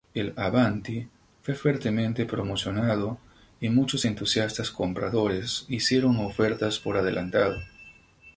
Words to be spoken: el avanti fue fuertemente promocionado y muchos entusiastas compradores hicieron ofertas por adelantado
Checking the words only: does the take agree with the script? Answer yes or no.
yes